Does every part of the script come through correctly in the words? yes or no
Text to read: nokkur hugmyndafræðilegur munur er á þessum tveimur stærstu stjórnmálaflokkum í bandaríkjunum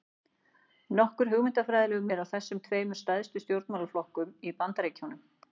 no